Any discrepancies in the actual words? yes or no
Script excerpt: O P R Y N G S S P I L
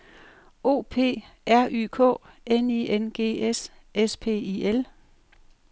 yes